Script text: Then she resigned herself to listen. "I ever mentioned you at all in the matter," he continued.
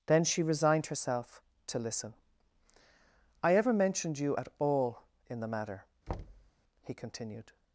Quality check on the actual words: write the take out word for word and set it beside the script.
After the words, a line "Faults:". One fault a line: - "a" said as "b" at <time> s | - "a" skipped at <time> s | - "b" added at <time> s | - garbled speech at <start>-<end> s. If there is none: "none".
Then she resigned herself to listen. "I ever mentioned you at all in the matter," he continued.
Faults:
none